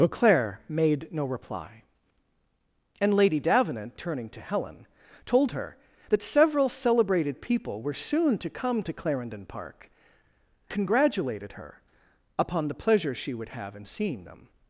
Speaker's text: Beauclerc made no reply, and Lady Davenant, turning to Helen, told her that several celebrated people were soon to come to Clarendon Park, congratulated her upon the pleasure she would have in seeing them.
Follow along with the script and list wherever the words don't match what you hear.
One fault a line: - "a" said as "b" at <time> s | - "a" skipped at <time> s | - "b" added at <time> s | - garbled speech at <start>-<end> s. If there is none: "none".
none